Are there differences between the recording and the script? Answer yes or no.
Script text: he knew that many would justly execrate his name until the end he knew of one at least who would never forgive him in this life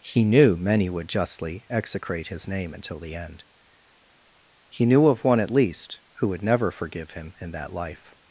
yes